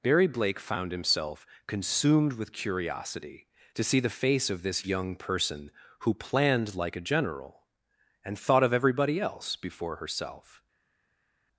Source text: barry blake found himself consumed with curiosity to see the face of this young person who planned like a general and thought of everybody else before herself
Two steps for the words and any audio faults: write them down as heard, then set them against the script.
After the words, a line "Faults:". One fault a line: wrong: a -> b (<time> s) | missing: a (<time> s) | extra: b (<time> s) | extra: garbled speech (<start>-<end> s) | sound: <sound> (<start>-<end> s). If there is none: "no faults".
barry blake found himself consumed with curiosity to see the face of this young person who planned like a general and thought of everybody else before herself
Faults:
no faults